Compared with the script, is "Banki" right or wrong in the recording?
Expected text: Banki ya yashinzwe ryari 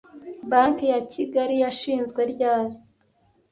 right